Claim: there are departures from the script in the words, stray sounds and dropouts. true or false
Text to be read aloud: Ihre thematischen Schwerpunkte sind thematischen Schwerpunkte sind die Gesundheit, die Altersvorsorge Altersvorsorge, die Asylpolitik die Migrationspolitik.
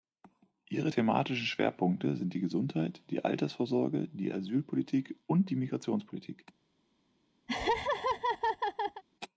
true